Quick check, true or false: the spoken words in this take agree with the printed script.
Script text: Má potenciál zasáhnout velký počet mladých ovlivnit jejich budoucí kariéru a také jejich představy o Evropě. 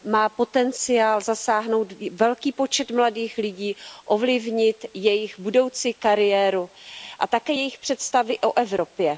false